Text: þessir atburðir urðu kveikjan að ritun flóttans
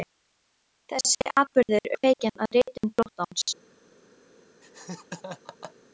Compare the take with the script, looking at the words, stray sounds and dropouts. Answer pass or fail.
fail